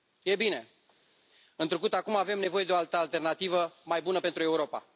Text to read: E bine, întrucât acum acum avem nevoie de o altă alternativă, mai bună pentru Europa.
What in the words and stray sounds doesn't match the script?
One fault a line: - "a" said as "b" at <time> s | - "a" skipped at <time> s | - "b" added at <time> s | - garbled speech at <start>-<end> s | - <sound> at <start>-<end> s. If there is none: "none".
- "acum" skipped at 2.1 s